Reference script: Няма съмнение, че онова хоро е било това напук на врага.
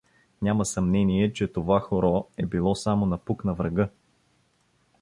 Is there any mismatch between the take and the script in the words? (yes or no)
yes